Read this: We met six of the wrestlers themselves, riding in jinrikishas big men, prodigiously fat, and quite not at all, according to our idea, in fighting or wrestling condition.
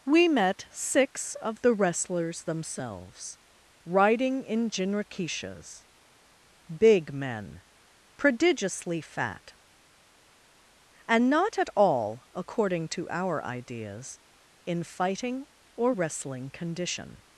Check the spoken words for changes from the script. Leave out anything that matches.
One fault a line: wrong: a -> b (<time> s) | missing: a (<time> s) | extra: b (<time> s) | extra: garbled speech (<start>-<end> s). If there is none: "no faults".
missing: quite (11.3 s)
wrong: idea -> ideas (13.4 s)